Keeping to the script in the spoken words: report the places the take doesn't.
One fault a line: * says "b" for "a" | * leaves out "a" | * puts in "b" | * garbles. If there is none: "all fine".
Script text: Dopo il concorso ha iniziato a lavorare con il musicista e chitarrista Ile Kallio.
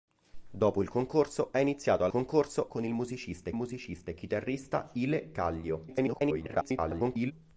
* says "concorso" for "lavorare"
* puts in "musicista"
* garbles